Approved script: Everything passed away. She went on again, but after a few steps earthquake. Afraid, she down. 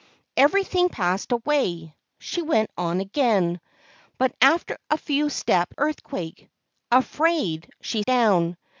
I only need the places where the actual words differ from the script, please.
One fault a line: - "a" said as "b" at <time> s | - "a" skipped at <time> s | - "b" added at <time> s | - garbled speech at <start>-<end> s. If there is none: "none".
none